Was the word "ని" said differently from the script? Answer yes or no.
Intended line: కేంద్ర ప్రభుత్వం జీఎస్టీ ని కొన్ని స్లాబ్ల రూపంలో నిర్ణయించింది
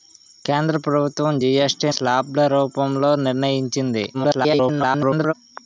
yes